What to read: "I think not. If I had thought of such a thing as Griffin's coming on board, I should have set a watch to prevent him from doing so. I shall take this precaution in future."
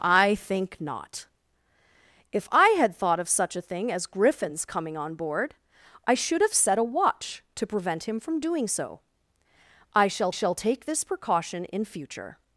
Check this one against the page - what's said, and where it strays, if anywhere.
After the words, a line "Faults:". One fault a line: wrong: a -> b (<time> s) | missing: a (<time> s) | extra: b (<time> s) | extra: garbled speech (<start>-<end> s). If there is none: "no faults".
"I think not. If I had thought of such a thing as Griffin's coming on board, I should have set a watch to prevent him from doing so. I shall shall take this precaution in future."
Faults:
extra: shall (10.3 s)